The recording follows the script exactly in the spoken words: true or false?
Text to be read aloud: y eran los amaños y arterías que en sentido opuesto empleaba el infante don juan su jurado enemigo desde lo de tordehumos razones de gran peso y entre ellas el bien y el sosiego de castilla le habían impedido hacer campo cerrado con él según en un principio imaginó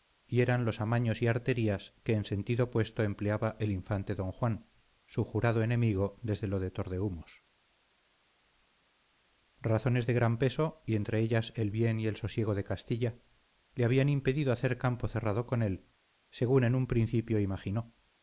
true